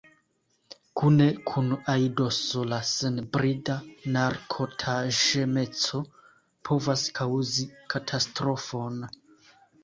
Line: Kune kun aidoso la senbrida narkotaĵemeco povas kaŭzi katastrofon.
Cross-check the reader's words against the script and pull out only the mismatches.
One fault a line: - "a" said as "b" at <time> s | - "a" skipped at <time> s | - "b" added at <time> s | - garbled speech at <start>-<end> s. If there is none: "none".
none